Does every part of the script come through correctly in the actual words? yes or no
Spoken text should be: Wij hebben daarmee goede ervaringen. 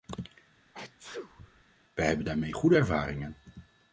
yes